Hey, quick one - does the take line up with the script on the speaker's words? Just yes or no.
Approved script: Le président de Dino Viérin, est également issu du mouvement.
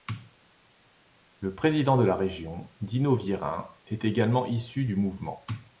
no